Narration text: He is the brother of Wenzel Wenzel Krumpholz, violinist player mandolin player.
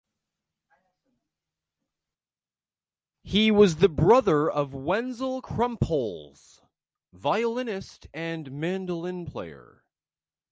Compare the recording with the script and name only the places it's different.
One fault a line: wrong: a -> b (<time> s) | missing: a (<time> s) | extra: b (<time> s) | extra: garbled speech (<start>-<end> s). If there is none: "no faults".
wrong: is -> was (3.5 s)
missing: Wenzel (5.4 s)
wrong: player -> and (8.1 s)